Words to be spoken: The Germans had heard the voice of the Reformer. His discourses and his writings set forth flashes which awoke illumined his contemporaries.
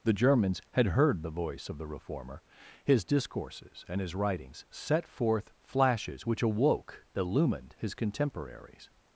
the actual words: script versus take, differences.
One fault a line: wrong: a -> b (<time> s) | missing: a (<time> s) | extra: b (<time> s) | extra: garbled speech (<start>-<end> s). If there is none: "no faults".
no faults